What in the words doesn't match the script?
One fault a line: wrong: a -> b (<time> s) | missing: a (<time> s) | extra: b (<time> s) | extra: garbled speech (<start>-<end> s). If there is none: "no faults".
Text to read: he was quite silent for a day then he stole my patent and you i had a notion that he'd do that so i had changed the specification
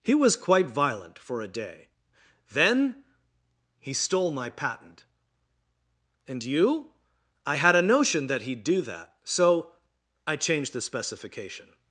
wrong: silent -> violent (0.7 s)
missing: had (10.3 s)